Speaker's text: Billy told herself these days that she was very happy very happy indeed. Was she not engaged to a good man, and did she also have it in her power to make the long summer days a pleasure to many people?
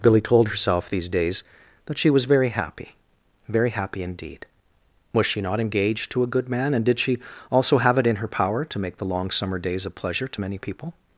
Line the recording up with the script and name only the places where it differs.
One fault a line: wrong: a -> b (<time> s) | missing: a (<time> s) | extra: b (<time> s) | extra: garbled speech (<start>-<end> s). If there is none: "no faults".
no faults